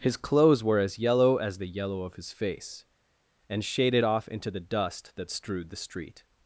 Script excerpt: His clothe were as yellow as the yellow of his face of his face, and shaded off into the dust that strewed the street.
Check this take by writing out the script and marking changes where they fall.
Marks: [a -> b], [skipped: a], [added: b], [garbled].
His [clothe -> clothes] were as yellow as the yellow of his face [skipped: of his face,] and shaded off into the dust that strewed the street.